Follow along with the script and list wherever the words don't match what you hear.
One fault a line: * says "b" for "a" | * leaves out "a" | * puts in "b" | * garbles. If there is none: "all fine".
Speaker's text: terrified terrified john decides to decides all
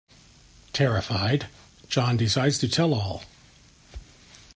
* leaves out "terrified"
* says "tell" for "decides"